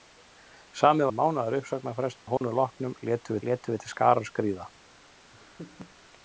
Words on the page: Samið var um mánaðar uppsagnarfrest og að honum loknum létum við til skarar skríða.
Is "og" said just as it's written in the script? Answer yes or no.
no